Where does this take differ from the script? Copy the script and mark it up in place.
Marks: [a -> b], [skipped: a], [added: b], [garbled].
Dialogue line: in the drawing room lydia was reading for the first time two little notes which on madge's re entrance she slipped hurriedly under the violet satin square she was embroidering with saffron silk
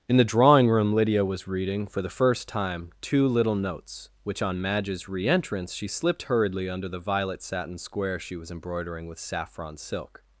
in the drawing room lydia was reading for the first time two little notes which on madge's re entrance she slipped hurriedly under the violet satin square she was embroidering with saffron silk